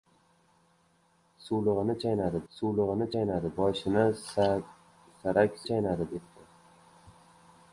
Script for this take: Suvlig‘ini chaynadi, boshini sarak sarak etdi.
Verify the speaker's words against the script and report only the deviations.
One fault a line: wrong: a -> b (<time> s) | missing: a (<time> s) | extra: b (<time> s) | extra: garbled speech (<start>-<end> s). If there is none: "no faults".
extra: suvlig‘ini chaynadi (2.5 s)
wrong: sarak -> chaynadi (5.7 s)